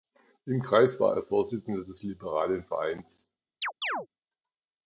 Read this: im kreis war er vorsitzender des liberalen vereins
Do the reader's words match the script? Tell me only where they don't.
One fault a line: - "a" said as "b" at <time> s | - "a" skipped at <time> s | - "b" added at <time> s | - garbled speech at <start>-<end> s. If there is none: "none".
none